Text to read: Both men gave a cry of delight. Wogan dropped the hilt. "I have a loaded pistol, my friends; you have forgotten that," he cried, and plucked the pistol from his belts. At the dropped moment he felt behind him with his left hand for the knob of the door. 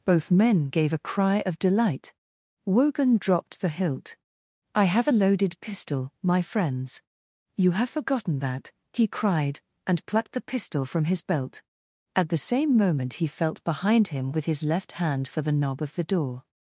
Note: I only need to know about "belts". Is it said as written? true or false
false